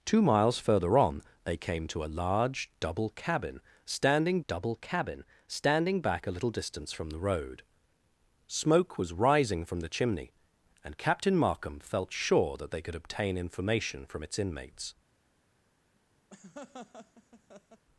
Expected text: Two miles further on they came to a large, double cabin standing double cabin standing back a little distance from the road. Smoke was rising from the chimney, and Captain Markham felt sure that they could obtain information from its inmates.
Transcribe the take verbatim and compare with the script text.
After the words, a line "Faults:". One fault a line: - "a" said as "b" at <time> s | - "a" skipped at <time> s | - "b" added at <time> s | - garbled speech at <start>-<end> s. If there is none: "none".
Two miles further on they came to a large, double cabin standing double cabin standing back a little distance from the road. Smoke was rising from the chimney, and Captain Markham felt sure that they could obtain information from its inmates.
Faults:
none